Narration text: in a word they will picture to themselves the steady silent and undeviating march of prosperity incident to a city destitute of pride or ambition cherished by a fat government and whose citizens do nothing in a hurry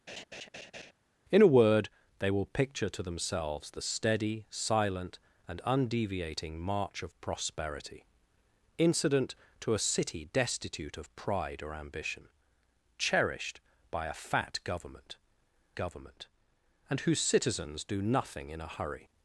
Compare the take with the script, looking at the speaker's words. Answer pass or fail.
fail